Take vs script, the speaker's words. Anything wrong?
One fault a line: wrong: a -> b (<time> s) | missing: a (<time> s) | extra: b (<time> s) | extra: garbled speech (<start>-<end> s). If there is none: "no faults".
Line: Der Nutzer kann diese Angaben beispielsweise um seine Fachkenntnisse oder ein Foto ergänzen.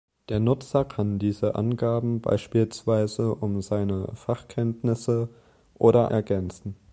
missing: ein Foto (6.1 s)